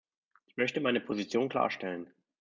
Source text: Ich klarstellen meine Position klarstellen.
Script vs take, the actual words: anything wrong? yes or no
yes